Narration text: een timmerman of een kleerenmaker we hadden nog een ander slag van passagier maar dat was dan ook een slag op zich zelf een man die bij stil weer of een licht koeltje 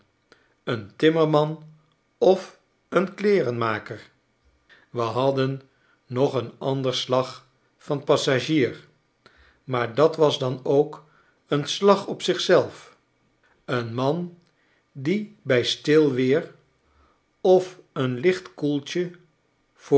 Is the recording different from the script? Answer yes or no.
no